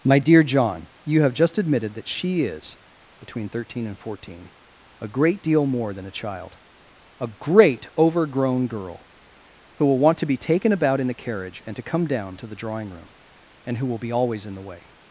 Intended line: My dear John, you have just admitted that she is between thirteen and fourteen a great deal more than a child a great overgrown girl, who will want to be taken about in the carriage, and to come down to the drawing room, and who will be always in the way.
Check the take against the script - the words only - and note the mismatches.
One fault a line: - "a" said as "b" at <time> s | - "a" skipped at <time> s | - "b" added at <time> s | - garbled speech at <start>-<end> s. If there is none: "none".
none